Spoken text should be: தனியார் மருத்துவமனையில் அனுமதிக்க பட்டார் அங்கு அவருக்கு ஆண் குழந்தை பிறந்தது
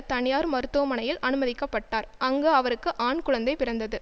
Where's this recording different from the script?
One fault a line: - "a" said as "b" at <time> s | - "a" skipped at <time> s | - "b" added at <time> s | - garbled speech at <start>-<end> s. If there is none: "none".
none